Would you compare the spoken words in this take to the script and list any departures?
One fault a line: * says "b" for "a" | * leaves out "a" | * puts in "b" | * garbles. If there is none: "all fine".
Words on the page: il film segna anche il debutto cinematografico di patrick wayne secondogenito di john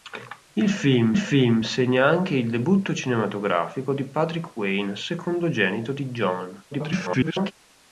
* puts in "film"
* garbles